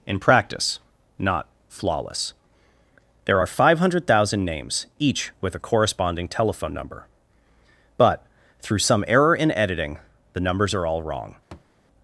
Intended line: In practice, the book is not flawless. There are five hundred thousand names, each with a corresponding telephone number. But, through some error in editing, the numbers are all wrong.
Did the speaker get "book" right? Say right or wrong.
wrong